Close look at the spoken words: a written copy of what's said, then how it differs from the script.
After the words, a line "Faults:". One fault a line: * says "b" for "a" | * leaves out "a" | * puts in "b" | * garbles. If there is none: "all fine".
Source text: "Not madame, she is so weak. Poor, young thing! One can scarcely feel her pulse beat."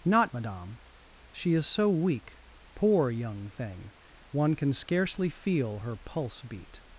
"Not madame, she is so weak. Poor, young thing! One can scarcely feel her pulse beat."
Faults:
all fine